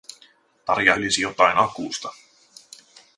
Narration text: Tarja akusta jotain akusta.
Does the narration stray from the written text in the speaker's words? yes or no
yes